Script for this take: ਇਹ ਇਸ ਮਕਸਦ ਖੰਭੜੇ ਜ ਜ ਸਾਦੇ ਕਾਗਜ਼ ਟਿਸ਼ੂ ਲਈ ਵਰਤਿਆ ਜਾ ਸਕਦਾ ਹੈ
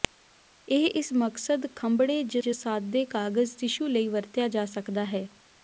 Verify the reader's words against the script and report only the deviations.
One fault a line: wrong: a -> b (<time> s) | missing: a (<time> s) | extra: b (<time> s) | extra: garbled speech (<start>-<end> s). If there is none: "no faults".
no faults